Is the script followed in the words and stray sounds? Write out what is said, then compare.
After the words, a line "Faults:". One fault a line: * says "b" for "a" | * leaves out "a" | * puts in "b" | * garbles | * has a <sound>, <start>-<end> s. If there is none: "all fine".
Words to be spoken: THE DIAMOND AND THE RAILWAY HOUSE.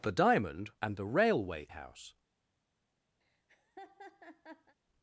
THE DIAMOND AND THE RAILWAY HOUSE.
Faults:
* has a laugh, 3.2-4.8 s